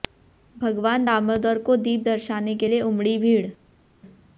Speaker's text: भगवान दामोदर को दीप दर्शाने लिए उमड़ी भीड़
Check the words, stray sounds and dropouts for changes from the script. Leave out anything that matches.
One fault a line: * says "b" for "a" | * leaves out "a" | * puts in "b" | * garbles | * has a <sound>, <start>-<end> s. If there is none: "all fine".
* puts in "के"